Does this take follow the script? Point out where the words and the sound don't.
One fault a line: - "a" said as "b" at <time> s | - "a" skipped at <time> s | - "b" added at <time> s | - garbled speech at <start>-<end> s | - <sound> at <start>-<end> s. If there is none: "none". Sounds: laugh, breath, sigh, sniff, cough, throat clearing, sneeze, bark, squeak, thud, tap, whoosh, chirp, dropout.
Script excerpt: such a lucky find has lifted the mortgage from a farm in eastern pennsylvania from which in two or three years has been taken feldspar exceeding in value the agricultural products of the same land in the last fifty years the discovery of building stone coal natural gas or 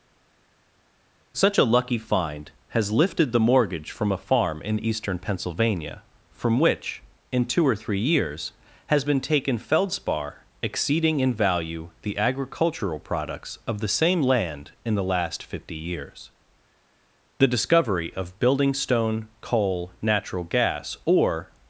none